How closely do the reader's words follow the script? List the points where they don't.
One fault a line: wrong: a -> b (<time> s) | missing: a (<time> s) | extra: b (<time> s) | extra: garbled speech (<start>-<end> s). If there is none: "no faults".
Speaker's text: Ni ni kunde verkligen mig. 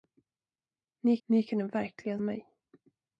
no faults